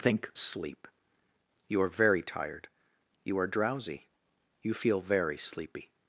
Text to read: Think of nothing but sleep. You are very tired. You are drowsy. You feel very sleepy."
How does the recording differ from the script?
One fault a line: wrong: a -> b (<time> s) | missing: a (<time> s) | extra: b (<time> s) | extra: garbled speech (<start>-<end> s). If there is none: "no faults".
missing: of nothing but (0.3 s)